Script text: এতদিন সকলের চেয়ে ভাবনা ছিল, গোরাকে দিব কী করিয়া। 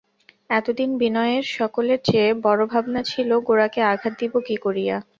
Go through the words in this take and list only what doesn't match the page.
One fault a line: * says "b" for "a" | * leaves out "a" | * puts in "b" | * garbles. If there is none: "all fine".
* puts in "বিনয়ের"
* puts in "বড়ো"
* puts in "আঘাত"